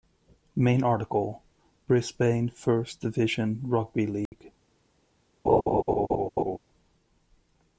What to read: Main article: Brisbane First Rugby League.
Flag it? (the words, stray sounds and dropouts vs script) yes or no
yes